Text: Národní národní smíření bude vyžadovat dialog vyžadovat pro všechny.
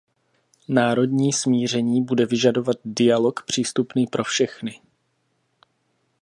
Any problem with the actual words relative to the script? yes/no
yes